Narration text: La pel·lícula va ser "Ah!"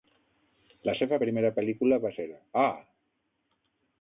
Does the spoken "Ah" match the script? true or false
true